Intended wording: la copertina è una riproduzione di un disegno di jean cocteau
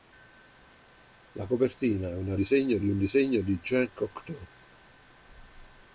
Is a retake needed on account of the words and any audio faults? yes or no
yes